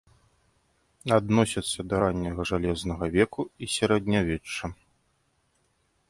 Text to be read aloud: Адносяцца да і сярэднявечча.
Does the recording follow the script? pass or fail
fail